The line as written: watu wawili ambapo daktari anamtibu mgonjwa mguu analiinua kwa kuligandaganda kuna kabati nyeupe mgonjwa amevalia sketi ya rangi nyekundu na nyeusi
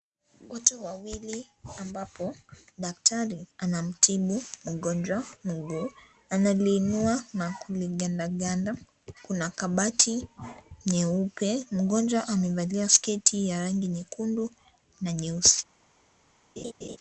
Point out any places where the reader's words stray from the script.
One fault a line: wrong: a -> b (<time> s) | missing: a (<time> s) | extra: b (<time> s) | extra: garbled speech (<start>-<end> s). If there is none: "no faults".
wrong: kwa -> na (7.3 s)